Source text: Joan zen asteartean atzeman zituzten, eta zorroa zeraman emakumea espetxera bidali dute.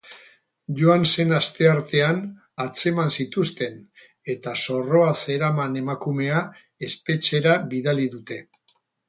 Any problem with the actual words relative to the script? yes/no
no